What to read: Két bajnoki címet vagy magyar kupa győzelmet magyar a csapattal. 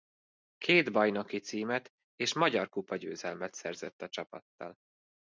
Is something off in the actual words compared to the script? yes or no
yes